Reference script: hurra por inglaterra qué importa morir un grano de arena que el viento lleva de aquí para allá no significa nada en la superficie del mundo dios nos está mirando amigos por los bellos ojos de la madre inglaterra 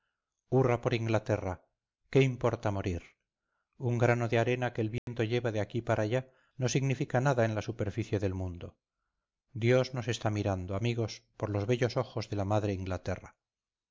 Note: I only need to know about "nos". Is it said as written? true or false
true